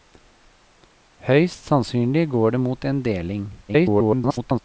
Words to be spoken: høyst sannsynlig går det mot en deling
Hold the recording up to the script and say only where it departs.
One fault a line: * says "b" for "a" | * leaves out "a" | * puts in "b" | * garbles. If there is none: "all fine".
* garbles